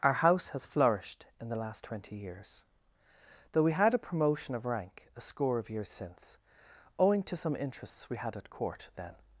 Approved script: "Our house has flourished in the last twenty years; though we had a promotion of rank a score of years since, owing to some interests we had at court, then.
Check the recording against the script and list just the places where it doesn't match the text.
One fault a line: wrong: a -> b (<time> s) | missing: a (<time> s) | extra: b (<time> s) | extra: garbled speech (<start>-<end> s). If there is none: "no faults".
no faults